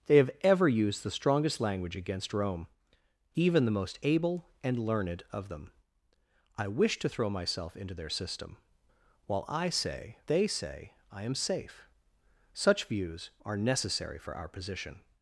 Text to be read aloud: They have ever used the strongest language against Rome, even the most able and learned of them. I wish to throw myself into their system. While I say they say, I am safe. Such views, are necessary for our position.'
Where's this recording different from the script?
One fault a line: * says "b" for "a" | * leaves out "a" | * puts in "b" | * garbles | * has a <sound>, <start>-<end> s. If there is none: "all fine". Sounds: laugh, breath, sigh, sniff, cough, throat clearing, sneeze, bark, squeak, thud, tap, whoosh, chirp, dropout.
all fine